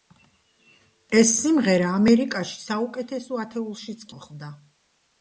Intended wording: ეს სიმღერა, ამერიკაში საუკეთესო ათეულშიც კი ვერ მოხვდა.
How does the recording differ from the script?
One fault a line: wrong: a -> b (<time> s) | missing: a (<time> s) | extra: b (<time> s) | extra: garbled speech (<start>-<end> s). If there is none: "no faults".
missing: კი ვერ (4.1 s)